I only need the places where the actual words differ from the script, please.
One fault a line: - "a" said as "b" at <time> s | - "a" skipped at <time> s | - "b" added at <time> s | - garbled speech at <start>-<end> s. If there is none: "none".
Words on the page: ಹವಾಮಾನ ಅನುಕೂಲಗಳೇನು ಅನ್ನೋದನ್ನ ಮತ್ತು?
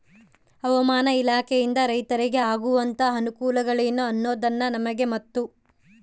- "ಇಲಾಖೆಯಿಂದ ರೈತರಿಗೆ ಆಗುವಂತಹ" added at 1.1 s
- "ನಮಗೆ" added at 4.7 s